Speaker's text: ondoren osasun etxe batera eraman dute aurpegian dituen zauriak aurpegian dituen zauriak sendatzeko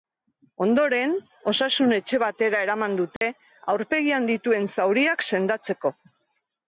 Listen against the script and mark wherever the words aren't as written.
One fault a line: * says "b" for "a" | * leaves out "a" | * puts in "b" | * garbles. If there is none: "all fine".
* leaves out "aurpegian dituen zauriak"